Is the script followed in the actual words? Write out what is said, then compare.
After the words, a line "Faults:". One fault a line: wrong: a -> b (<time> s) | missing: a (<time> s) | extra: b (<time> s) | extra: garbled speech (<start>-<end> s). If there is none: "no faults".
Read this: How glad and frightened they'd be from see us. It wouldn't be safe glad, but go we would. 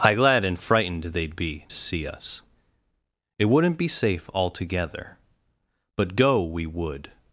How glad and frightened they'd be to see us. It wouldn't be safe altogether, but go we would.
Faults:
wrong: from -> to (1.7 s)
wrong: glad -> altogether (4.3 s)